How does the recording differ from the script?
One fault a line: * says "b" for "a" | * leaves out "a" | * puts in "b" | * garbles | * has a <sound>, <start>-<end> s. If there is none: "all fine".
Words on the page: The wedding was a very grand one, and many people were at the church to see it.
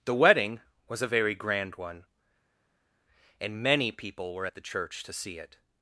all fine